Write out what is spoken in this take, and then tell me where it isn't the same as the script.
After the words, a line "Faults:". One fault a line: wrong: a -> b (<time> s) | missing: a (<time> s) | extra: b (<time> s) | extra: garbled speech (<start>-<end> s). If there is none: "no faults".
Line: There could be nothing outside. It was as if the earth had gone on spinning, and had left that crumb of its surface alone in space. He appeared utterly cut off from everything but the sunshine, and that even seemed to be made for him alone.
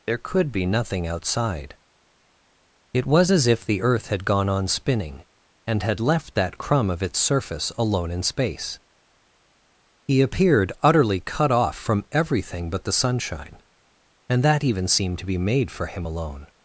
There could be nothing outside. It was as if the earth had gone on spinning, and had left that crumb of its surface alone in space. He appeared utterly cut off from everything but the sunshine, and that even seemed to be made for him alone.
Faults:
no faults